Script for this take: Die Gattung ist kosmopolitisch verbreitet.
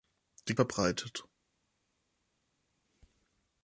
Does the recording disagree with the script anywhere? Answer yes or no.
yes